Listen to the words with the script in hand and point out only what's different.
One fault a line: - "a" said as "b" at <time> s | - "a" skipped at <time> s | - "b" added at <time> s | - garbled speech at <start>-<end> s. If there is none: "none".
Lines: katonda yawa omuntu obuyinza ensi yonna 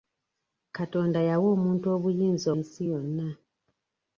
none